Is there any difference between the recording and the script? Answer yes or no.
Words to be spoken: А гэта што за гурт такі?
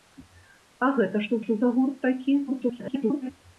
yes